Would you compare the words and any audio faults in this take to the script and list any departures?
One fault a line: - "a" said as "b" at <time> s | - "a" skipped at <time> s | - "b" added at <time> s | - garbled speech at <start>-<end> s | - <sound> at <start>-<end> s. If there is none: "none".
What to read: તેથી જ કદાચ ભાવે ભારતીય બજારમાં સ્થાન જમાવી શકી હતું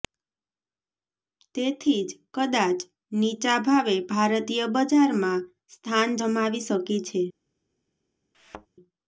- "નીચા" added at 3.2 s
- "હતું" said as "છે" at 7.0 s
- thud at 8.3-8.7 s